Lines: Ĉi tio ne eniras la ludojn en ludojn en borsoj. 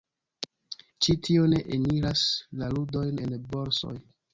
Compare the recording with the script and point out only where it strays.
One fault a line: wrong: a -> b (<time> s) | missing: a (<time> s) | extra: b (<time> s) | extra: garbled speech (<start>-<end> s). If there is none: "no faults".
missing: ludojn en (3.4 s)